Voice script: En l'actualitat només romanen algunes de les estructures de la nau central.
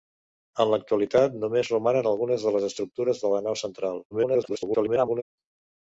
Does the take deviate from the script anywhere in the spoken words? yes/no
yes